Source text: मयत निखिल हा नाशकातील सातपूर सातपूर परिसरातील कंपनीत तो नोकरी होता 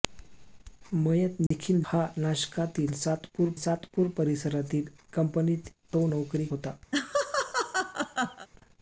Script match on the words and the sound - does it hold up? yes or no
no